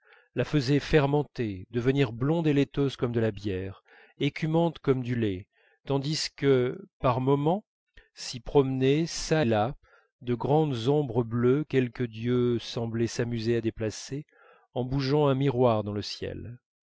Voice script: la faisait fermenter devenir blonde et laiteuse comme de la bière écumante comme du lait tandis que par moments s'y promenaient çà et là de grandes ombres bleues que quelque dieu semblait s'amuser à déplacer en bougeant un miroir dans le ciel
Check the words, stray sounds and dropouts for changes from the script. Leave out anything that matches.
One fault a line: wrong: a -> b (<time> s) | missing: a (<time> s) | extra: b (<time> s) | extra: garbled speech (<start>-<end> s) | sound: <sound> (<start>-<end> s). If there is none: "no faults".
missing: et (9.4 s)
missing: que (11.6 s)